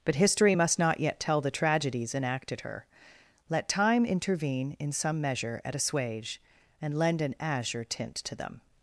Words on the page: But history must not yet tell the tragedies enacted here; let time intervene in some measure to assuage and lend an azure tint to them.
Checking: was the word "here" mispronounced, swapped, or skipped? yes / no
yes